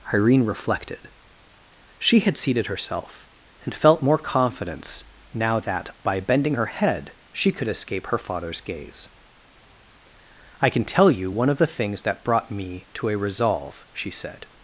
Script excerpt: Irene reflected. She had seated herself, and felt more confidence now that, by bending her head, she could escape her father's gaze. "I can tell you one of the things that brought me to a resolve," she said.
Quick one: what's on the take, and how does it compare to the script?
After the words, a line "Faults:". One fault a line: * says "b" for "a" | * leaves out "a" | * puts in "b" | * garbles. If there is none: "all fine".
Irene reflected. She had seated herself, and felt more confidence now that, by bending her head, she could escape her father's gaze. "I can tell you one of the things that brought me to a resolve," she said.
Faults:
all fine